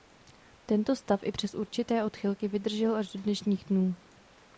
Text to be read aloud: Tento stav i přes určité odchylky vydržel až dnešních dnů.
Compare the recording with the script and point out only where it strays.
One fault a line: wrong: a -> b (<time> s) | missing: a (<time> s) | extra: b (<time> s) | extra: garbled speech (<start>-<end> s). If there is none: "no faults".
extra: do (3.1 s)